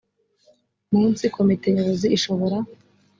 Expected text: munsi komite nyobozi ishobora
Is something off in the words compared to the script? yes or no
no